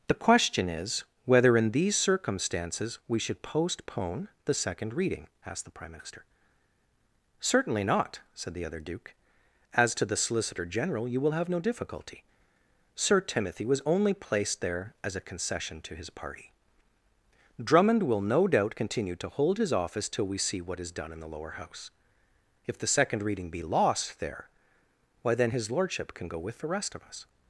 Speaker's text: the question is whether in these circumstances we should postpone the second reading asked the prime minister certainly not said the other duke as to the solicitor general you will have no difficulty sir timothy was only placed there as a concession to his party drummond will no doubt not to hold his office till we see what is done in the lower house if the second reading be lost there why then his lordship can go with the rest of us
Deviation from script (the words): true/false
true